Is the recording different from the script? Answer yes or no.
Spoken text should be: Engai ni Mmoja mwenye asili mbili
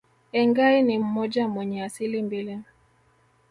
no